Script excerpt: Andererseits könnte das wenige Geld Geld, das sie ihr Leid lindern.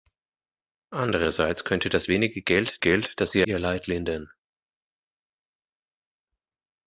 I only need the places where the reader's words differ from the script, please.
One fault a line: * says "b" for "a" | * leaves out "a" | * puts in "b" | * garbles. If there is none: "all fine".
all fine